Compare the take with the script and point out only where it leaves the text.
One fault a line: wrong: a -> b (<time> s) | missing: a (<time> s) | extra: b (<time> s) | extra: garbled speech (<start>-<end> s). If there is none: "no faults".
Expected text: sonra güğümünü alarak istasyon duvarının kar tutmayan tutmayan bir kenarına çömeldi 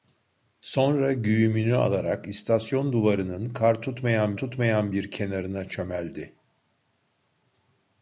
no faults